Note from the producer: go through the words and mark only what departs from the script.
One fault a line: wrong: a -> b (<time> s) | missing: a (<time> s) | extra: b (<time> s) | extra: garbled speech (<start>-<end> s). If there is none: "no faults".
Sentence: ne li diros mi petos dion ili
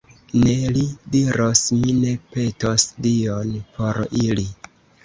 extra: ne (2.0 s)
extra: por (3.8 s)